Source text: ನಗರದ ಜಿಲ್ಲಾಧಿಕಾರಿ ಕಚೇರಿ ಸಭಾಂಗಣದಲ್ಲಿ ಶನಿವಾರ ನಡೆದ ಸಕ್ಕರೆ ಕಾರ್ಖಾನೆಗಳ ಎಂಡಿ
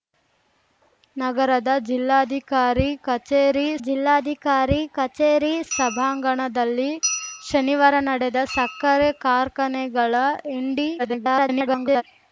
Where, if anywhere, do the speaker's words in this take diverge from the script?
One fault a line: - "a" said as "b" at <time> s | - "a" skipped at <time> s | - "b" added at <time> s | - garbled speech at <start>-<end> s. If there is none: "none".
- "ಜಿಲ್ಲಾಧಿಕಾರಿ ಕಚೇರಿ" added at 3.8 s
- garbled speech at 11.0-12.0 s